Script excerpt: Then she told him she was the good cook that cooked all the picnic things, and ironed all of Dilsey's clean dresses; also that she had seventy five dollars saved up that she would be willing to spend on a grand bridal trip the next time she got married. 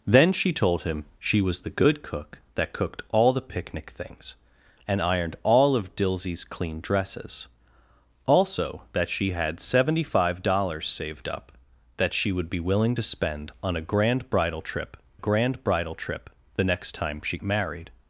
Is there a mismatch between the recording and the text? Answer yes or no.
yes